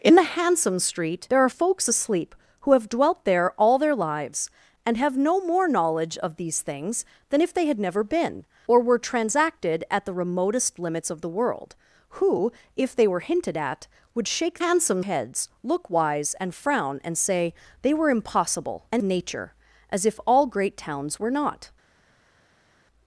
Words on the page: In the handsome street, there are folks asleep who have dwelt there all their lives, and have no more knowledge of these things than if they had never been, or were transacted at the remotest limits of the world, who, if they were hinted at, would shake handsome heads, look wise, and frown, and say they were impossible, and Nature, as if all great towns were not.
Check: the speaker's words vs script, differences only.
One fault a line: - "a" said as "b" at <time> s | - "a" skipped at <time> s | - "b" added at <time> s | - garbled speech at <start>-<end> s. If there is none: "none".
none